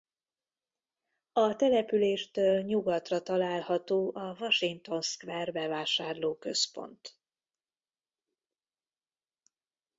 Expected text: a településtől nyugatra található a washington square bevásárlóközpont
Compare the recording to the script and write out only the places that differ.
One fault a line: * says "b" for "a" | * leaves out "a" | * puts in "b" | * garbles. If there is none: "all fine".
all fine